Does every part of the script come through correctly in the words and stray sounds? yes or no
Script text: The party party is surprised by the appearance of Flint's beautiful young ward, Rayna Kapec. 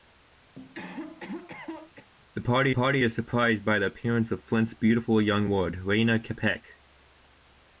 no